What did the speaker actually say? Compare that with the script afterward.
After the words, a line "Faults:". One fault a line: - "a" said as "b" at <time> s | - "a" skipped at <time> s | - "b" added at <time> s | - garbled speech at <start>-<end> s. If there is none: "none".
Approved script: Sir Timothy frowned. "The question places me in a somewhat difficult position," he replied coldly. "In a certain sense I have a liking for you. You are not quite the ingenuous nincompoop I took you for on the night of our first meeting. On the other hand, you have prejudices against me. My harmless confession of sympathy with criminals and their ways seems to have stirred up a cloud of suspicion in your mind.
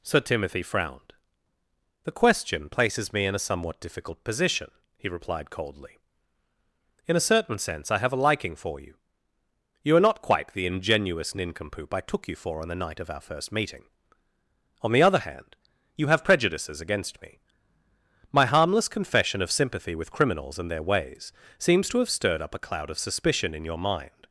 Sir Timothy frowned. "The question places me in a somewhat difficult position," he replied coldly. "In a certain sense I have a liking for you. You are not quite the ingenuous nincompoop I took you for on the night of our first meeting. On the other hand, you have prejudices against me. My harmless confession of sympathy with criminals and their ways seems to have stirred up a cloud of suspicion in your mind.
Faults:
none